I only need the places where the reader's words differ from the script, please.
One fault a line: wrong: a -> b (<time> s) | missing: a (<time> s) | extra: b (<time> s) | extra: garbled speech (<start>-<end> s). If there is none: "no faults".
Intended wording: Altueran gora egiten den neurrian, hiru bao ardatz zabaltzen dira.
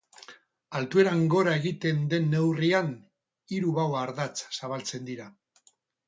no faults